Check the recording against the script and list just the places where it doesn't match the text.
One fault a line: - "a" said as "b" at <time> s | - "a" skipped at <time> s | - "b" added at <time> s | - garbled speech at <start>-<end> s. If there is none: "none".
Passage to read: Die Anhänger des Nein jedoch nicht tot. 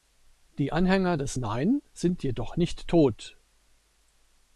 - "sind" added at 1.9 s